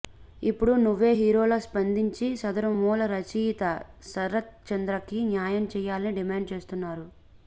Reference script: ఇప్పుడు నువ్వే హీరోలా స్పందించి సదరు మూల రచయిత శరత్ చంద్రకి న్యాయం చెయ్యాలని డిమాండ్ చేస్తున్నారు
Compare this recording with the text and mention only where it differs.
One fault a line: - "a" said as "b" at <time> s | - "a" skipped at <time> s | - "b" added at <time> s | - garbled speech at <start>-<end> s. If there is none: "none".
none